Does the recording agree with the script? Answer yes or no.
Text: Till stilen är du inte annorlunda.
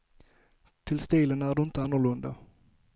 yes